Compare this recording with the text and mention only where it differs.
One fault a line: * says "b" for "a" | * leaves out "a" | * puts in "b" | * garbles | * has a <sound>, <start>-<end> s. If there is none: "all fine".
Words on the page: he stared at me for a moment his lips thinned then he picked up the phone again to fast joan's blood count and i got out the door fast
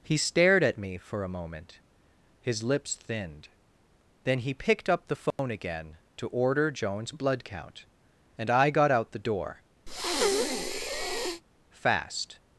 * has a dropout, 5.3-5.4 s
* says "order" for "fast"
* has a breath, 9.9-11.4 s